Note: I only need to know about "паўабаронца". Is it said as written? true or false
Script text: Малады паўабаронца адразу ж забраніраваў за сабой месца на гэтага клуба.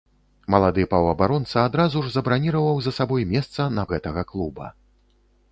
true